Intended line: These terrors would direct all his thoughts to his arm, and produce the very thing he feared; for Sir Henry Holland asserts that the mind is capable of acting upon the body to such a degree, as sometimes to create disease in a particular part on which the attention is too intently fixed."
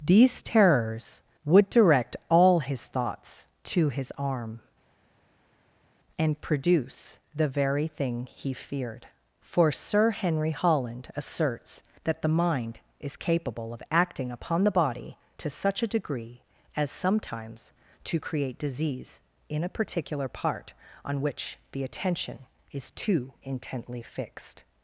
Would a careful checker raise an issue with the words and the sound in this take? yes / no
no